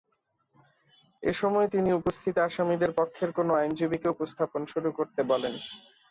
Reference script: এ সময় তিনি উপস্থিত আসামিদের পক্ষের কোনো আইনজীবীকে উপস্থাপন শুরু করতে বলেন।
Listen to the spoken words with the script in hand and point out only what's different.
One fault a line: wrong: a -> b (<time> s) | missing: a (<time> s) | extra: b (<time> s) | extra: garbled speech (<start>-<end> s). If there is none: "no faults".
no faults